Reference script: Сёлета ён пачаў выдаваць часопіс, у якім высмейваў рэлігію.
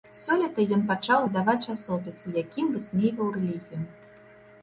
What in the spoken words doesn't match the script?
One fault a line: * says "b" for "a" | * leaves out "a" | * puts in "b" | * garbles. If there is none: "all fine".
all fine